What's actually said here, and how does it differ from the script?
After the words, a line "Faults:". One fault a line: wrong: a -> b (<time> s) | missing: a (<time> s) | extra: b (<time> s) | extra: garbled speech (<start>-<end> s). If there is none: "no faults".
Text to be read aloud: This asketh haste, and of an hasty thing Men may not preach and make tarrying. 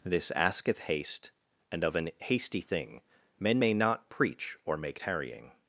This asketh haste, and of an hasty thing Men may not preach or make tarrying.
Faults:
wrong: and -> or (4.6 s)